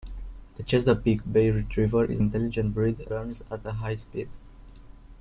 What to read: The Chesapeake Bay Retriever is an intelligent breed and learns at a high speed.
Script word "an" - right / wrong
wrong